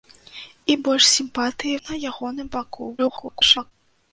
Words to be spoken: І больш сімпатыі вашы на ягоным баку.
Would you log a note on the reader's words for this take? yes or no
yes